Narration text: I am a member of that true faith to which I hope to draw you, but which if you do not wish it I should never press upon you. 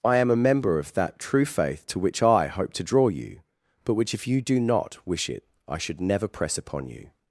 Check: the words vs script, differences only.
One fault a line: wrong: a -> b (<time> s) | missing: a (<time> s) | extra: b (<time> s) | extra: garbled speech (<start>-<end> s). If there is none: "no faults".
no faults